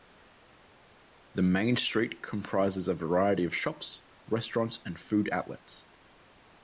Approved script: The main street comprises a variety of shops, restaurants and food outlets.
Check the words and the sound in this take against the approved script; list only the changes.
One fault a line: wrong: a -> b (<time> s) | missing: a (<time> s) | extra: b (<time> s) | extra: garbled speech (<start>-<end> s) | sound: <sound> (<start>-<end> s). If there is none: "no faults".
no faults